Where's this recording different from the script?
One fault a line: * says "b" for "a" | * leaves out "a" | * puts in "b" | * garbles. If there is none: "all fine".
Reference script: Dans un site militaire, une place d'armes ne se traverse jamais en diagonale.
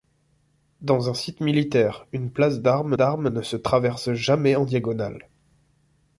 * puts in "d'armes"